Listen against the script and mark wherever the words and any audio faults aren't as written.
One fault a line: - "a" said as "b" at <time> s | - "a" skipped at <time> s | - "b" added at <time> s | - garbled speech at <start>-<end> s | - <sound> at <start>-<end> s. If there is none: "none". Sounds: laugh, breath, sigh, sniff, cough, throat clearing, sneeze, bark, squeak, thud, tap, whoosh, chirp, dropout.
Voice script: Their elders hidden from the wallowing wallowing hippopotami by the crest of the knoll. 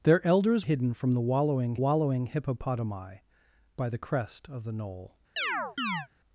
- chirp at 5.4-6.1 s